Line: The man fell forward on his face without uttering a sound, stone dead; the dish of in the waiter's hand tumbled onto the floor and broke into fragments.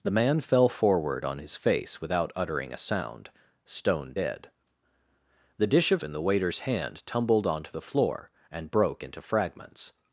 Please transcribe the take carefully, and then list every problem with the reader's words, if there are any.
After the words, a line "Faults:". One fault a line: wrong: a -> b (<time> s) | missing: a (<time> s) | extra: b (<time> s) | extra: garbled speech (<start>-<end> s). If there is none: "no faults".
The man fell forward on his face without uttering a sound, stone dead; the dish of in the waiter's hand tumbled onto the floor and broke into fragments.
Faults:
no faults